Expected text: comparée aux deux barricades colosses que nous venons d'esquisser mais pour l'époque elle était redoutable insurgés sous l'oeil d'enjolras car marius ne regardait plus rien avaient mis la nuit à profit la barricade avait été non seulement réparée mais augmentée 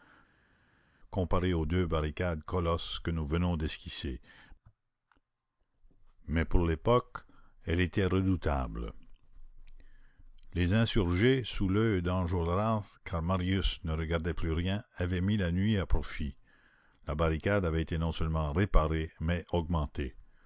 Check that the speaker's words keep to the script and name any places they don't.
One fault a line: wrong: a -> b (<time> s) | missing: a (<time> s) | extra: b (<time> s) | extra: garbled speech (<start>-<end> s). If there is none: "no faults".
extra: les (10.5 s)